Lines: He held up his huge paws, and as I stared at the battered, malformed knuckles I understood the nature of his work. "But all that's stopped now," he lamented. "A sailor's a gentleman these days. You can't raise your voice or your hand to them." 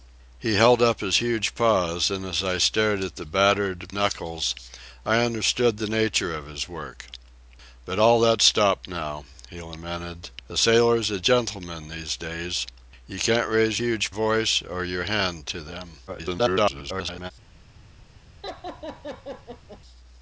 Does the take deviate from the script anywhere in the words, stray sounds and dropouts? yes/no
yes